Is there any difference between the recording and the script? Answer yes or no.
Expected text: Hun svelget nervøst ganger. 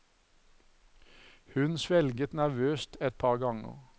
yes